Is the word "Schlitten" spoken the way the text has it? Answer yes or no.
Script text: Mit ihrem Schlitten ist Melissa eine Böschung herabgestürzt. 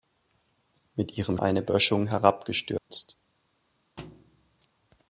no